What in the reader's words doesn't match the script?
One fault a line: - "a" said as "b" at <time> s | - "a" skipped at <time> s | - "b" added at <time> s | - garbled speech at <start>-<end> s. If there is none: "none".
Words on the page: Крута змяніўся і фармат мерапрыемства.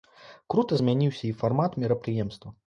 none